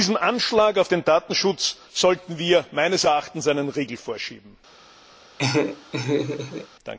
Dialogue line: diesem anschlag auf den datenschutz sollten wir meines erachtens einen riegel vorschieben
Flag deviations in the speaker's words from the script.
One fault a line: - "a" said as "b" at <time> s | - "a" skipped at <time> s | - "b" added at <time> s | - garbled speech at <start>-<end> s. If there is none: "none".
none